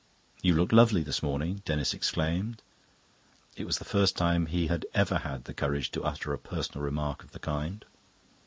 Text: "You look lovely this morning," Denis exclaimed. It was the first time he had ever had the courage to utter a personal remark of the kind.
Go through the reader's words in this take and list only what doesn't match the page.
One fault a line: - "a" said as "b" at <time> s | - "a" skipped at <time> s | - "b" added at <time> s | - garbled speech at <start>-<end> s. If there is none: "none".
none